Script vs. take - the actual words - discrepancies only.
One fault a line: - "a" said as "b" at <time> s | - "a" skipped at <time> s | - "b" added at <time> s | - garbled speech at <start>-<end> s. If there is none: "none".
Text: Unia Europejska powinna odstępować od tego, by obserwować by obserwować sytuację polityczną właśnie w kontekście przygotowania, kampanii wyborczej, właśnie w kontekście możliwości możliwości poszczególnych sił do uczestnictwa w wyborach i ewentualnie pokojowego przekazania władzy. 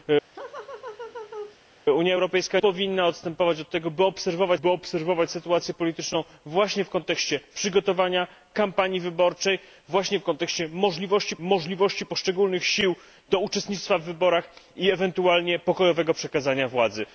none